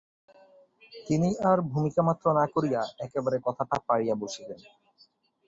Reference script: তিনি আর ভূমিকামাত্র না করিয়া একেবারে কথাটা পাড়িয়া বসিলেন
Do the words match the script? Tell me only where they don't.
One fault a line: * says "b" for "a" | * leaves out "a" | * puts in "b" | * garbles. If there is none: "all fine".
all fine